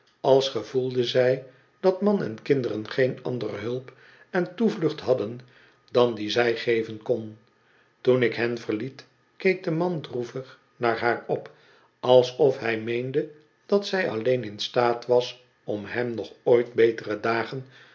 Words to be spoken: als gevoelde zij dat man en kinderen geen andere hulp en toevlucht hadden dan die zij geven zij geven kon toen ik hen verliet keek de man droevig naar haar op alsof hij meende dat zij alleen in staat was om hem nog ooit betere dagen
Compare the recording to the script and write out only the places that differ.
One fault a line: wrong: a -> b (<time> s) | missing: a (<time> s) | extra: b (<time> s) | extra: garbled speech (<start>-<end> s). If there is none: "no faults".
missing: zij geven (7.0 s)